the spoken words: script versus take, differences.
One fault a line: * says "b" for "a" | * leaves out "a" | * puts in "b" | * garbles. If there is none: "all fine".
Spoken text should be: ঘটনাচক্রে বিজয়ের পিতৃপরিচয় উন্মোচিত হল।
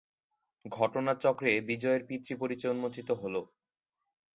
all fine